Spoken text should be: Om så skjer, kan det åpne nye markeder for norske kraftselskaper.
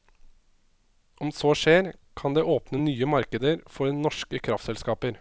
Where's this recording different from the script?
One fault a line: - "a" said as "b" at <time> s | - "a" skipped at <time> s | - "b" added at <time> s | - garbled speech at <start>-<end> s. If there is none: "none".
none